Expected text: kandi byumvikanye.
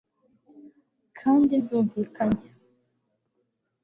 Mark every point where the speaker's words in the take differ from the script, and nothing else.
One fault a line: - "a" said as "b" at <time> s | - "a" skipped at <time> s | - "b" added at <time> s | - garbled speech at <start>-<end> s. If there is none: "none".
none